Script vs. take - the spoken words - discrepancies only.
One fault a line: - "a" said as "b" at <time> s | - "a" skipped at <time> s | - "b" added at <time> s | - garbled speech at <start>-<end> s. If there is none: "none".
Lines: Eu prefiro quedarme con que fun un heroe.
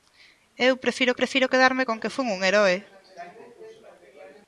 - "prefiro" added at 1.2 s